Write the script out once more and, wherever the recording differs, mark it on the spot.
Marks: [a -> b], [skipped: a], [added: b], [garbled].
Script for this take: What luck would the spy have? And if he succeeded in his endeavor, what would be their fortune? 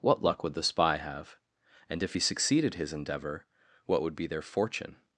What luck would the spy have? And if he succeeded [skipped: in] his endeavor, what would be their fortune?